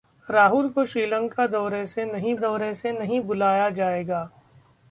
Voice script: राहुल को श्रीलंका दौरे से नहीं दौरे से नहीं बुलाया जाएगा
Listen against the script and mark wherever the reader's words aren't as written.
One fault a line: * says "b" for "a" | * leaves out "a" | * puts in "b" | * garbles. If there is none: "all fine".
all fine